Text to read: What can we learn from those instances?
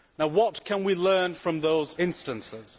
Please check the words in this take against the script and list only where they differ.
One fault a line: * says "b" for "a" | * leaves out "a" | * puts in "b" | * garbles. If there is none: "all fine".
all fine